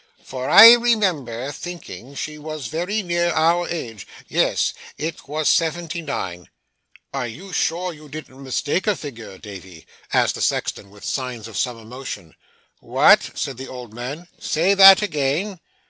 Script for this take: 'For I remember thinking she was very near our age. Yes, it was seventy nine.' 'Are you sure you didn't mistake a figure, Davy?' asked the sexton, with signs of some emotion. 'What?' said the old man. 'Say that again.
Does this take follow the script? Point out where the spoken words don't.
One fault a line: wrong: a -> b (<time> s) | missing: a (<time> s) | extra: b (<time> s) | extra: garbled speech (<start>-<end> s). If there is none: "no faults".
no faults